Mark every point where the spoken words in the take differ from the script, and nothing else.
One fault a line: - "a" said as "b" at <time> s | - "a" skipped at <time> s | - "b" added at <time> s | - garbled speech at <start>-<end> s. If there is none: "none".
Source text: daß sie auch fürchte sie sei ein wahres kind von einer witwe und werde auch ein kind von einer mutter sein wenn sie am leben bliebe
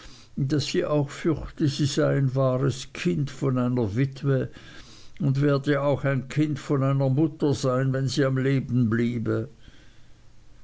none